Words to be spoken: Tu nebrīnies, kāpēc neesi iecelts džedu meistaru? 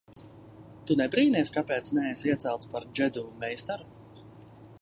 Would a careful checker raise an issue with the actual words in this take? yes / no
yes